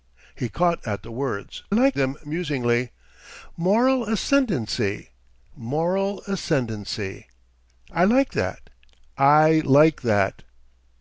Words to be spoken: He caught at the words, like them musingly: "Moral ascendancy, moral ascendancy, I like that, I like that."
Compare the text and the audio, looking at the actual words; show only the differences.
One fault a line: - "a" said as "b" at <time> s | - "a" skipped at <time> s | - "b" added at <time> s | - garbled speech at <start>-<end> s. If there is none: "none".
none